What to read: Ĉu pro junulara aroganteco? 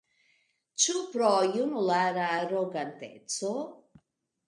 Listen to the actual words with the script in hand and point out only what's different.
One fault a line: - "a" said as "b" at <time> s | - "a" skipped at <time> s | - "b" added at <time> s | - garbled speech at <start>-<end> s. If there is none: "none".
none